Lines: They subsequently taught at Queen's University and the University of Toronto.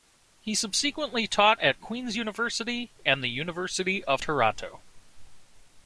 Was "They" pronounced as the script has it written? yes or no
no